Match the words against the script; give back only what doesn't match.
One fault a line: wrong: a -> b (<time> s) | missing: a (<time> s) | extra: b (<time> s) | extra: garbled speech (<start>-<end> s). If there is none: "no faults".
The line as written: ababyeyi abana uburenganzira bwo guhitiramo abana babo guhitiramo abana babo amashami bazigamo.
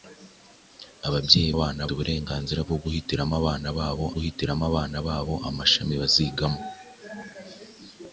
no faults